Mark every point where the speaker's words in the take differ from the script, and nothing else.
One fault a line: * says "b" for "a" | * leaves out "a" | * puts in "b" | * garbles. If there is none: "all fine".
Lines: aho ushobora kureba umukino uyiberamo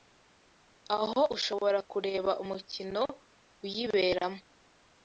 all fine